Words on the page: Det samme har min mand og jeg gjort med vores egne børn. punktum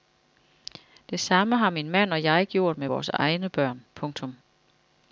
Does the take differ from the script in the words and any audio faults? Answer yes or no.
no